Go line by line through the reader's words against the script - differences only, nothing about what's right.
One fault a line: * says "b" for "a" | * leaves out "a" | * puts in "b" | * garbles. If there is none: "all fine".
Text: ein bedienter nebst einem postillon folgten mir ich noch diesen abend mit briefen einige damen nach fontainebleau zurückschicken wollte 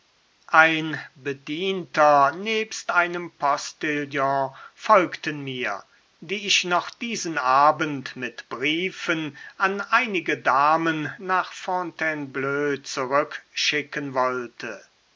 * puts in "die"
* puts in "an"